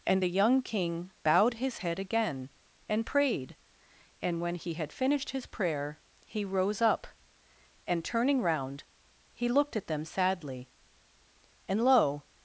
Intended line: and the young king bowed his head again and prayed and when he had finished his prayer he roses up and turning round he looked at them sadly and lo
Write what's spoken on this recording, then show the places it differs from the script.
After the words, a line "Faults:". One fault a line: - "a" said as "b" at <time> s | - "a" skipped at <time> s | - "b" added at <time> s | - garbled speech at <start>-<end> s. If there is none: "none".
and the young king bowed his head again and prayed and when he had finished his prayer he rose up and turning round he looked at them sadly and lo
Faults:
- "roses" said as "rose" at 6.4 s